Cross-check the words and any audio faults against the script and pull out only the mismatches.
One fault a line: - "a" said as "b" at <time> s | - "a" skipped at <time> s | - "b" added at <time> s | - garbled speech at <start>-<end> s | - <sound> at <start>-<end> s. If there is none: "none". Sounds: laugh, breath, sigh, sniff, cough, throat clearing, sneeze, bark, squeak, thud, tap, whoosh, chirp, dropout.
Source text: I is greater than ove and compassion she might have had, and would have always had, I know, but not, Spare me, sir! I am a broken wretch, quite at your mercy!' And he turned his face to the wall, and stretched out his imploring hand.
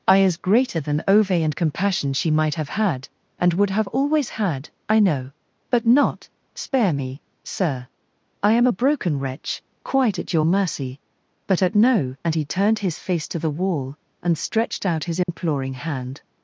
- "but at no" added at 11.5 s
- dropout at 15.2-15.3 s